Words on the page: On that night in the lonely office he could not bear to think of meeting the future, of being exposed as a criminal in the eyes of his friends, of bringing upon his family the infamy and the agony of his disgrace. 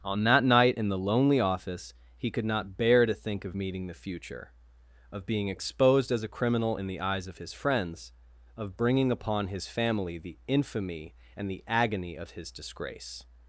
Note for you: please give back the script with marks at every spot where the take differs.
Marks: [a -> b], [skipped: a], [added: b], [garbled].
On that night in the lonely office he could not bear to think of meeting the future, of being exposed as a criminal in the eyes of his friends, of bringing upon his family the infamy and the agony of his disgrace.